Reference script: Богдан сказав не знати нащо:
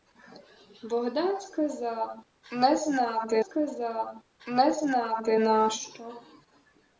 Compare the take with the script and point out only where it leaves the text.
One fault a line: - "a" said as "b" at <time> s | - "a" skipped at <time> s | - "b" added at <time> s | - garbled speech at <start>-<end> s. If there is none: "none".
- "сказав не знати" added at 3.4 s